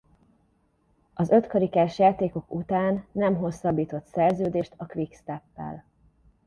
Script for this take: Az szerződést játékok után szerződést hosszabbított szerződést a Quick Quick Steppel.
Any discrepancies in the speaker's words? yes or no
yes